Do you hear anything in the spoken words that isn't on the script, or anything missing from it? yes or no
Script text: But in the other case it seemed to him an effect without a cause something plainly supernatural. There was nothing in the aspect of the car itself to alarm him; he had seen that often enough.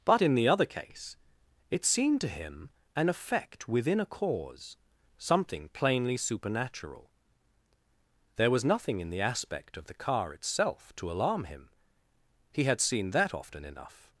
yes